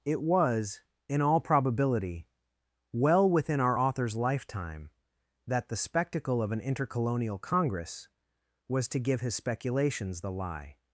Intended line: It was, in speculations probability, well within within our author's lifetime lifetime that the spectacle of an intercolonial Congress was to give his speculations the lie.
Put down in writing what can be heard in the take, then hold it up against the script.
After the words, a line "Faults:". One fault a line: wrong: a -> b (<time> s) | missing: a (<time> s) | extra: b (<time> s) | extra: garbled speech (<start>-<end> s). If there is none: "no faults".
It was, in all probability, well within our author's lifetime that the spectacle of an intercolonial Congress was to give his speculations the lie.
Faults:
wrong: speculations -> all (1.2 s)
missing: within (3.6 s)
missing: lifetime (4.9 s)